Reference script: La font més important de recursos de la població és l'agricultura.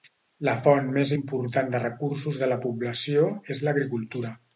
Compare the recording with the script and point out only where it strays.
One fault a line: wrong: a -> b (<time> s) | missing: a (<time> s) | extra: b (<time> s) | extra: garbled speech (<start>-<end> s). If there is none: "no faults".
no faults